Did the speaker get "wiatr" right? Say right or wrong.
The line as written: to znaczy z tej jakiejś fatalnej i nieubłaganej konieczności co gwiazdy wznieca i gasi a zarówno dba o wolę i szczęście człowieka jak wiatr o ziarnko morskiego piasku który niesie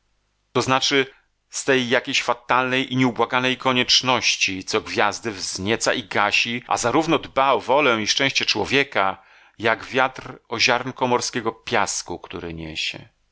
right